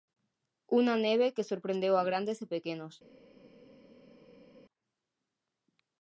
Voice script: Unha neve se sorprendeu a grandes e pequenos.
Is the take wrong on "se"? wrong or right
wrong